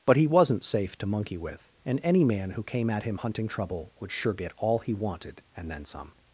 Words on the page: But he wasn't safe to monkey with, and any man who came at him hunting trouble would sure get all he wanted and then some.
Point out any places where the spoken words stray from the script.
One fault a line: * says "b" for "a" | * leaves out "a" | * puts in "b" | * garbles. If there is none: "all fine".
all fine